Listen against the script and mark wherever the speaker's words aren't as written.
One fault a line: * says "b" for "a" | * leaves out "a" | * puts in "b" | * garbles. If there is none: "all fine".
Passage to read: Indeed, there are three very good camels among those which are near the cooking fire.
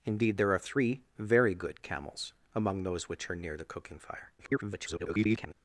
* garbles